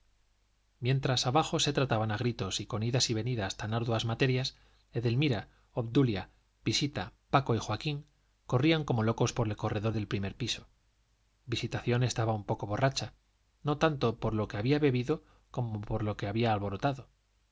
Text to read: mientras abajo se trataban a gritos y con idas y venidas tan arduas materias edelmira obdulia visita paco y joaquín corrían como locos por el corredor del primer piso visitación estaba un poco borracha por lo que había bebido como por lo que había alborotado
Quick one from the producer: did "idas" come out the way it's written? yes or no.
yes